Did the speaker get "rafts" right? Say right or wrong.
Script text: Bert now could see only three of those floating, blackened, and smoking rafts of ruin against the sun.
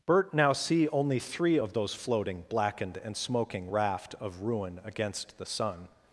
wrong